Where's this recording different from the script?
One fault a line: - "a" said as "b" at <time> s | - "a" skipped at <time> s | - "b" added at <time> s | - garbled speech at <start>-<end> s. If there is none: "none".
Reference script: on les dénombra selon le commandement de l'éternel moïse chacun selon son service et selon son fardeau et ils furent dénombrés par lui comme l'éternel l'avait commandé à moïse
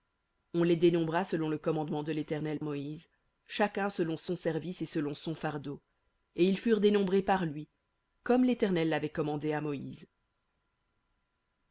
none